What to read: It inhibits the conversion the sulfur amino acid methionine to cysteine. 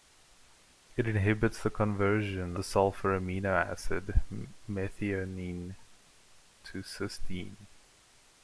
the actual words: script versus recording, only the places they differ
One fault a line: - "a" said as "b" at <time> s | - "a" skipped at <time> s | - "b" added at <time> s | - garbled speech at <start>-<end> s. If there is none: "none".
none